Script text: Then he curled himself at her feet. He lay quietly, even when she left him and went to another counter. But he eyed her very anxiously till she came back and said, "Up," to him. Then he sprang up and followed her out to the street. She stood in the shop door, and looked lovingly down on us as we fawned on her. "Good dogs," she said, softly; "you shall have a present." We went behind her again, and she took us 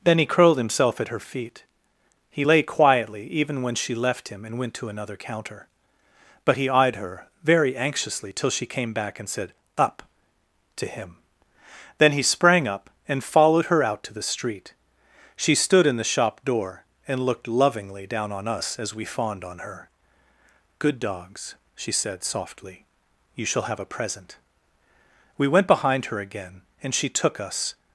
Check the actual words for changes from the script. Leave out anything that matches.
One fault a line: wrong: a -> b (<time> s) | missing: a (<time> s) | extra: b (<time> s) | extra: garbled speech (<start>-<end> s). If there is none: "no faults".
no faults